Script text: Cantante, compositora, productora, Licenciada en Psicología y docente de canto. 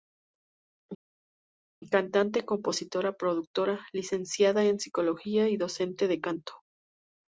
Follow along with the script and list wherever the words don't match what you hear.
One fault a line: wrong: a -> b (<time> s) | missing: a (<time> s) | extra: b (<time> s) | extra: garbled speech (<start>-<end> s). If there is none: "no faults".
no faults